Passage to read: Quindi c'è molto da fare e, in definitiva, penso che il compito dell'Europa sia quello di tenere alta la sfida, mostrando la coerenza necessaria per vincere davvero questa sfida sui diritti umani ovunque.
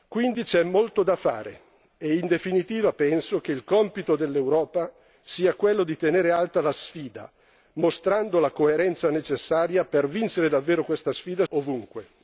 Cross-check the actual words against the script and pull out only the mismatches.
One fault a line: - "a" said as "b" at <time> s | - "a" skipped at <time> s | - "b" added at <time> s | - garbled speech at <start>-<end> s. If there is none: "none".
- "sui diritti umani" skipped at 11.4 s